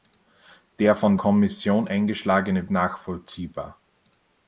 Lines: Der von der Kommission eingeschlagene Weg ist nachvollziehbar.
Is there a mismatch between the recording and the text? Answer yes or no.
yes